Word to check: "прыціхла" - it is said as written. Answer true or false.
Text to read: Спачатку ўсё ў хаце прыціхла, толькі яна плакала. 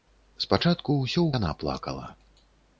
false